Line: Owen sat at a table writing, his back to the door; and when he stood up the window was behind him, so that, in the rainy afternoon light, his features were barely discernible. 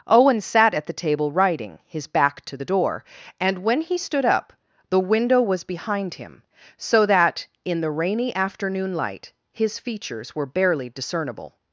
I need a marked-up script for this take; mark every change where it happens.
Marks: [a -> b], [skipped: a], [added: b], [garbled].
Owen sat at [a -> the] table writing, his back to the door; and when he stood up the window was behind him, so that, in the rainy afternoon light, his features were barely discernible.